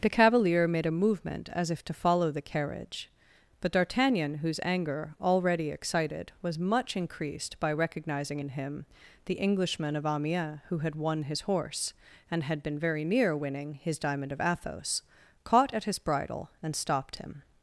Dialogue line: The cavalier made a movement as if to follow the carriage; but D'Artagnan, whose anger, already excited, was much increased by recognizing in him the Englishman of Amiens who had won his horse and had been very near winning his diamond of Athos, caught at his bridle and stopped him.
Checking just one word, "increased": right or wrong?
right